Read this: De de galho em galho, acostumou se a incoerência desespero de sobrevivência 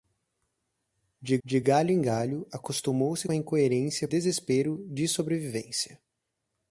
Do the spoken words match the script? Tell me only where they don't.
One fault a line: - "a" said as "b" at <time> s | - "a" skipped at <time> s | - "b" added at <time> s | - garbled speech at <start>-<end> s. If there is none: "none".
none